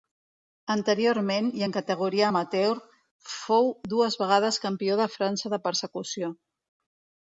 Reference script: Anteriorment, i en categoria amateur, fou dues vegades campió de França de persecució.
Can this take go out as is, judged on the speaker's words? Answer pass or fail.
pass